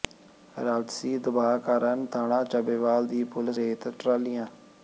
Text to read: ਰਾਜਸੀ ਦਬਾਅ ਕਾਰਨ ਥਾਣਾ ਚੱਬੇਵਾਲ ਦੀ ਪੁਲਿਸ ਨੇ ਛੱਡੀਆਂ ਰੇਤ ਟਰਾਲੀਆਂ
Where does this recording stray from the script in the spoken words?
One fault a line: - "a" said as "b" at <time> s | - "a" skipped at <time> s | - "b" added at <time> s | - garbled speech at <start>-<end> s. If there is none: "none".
- "ਨੇ ਛੱਡੀਆਂ" skipped at 3.6 s